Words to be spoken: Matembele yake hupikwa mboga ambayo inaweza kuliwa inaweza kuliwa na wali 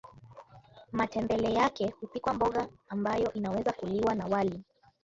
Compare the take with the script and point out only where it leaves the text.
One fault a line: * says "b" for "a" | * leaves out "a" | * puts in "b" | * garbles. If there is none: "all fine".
* leaves out "inaweza kuliwa"